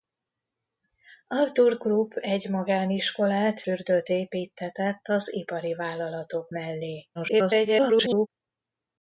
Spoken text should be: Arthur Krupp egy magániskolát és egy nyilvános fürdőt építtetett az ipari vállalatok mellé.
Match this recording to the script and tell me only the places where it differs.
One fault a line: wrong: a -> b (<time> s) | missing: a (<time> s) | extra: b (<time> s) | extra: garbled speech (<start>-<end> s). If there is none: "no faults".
missing: és egy nyilvános (3.6 s)
extra: garbled speech (7.1-8.3 s)